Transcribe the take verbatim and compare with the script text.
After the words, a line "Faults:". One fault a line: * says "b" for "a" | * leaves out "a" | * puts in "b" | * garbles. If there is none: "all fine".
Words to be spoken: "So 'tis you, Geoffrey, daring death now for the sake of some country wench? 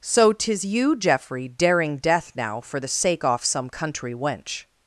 "So 'tis you, Geoffrey, daring death now for the sake off some country wench?
Faults:
* says "off" for "of"